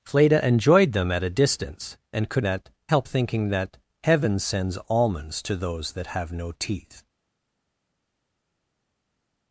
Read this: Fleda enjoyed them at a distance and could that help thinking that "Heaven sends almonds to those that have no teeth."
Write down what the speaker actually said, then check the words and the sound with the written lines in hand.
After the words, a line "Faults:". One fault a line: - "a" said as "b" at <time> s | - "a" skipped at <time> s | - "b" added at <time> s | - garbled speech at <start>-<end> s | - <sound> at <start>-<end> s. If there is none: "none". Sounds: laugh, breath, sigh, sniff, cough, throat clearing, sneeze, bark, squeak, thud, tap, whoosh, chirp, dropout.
Fleda enjoyed them at a distance and could that help thinking that "Heaven sends almonds to those that have no teeth."
Faults:
none